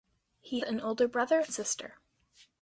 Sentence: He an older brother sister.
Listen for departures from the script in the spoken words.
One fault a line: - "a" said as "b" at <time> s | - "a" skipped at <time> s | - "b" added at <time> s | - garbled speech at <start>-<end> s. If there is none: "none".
none